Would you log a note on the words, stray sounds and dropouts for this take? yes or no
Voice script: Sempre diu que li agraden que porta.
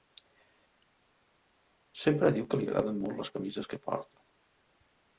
yes